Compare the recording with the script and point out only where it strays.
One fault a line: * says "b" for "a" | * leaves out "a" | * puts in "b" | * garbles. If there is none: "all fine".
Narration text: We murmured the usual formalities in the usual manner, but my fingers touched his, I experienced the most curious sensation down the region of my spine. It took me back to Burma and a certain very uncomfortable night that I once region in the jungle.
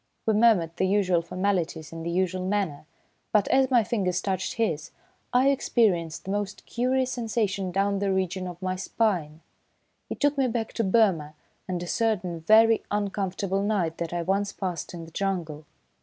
* puts in "as"
* says "passed" for "region"